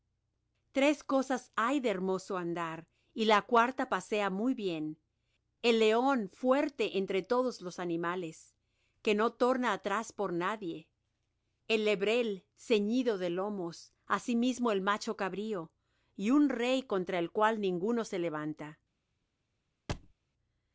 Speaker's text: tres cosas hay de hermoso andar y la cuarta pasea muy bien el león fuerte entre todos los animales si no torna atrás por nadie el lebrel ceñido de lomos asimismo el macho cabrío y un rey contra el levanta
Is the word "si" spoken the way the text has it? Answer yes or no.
no